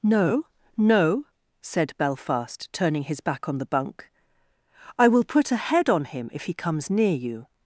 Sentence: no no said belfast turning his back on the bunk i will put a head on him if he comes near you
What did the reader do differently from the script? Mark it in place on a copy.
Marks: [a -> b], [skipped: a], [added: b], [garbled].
no no said belfast turning his back on the bunk i will put a head on him if he comes near you